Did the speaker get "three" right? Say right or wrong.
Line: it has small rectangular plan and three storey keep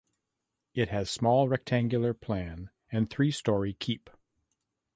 right